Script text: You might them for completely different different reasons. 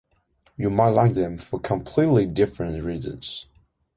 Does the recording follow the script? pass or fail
fail